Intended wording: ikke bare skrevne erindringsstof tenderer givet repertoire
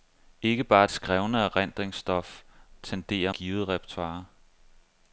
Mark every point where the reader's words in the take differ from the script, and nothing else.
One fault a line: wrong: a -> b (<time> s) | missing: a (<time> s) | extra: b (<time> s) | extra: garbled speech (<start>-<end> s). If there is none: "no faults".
no faults